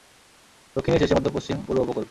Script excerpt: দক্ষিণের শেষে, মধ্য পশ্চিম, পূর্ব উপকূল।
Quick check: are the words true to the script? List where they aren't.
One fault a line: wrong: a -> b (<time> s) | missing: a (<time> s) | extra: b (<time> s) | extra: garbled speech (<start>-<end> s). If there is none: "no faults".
no faults